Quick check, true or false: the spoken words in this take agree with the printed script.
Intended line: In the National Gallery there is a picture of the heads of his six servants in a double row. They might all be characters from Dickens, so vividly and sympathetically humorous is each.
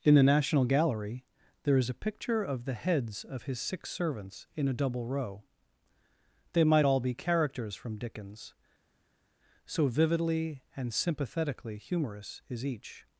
true